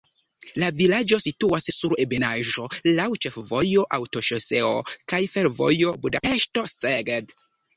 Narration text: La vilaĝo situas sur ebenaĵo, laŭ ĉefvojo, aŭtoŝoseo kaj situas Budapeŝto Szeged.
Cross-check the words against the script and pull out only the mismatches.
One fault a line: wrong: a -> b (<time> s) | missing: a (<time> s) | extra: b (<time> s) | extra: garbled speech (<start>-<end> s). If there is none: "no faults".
wrong: situas -> fervojo (5.4 s)